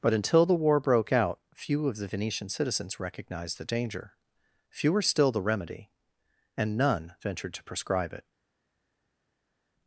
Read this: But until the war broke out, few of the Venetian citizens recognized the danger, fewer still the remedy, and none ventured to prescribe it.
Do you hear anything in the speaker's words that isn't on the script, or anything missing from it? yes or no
no